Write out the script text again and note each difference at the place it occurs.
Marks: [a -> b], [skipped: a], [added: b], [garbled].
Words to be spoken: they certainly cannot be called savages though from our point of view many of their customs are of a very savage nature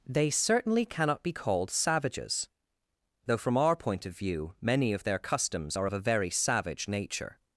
they certainly cannot be called savages though from our point of view many of their customs are of a very savage nature